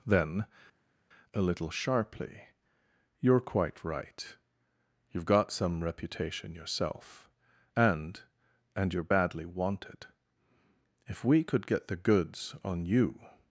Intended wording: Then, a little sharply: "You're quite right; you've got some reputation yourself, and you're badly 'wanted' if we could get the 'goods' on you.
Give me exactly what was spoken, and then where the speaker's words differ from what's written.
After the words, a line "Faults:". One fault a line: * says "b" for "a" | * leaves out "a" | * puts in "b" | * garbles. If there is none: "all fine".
Then, a little sharply: "You're quite right; you've got some reputation yourself, and and you're badly 'wanted' if we could get the 'goods' on you.
Faults:
* puts in "and"